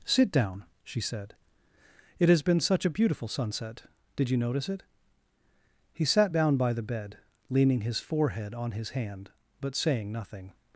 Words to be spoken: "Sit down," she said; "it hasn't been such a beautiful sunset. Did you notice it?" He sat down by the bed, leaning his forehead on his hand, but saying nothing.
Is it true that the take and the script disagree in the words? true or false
true